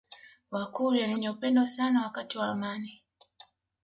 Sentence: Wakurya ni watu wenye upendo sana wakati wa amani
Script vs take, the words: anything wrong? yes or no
yes